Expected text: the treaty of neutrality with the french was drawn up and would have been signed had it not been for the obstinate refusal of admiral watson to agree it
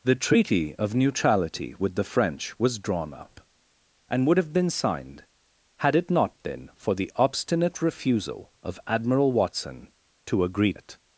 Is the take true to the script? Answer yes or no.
yes